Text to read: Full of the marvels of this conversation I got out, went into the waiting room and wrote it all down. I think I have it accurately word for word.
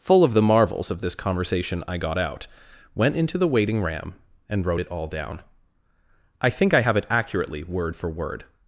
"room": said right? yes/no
no